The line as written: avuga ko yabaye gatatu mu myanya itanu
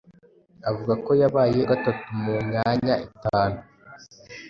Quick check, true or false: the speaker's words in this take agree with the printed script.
true